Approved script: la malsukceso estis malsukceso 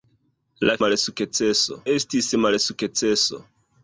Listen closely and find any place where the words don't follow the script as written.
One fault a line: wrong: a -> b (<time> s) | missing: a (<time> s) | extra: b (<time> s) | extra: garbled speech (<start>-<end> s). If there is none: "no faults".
no faults